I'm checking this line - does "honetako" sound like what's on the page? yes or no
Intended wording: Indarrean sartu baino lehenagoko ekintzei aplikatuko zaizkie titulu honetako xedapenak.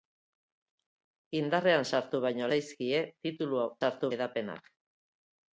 no